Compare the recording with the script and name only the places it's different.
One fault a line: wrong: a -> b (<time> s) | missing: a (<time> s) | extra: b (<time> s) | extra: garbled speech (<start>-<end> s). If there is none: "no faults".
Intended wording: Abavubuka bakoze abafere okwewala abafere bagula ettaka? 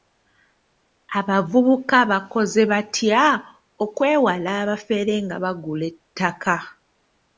wrong: abafere -> batya (2.7 s)
extra: nga (5.2 s)